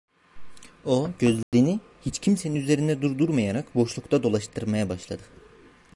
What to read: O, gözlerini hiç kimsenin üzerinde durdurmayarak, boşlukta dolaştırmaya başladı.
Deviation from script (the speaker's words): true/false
false